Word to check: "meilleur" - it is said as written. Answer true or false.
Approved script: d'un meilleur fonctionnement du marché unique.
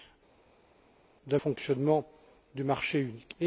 false